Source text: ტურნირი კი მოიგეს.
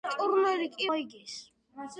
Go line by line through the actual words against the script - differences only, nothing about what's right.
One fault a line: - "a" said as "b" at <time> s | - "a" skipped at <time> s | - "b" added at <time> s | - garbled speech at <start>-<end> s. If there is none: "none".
none